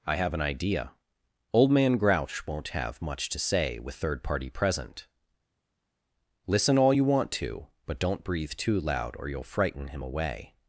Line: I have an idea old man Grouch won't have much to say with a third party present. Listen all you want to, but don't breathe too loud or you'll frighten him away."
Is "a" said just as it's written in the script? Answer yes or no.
no